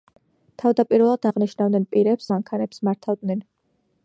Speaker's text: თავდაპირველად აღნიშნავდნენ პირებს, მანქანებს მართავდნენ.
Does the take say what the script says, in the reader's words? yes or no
yes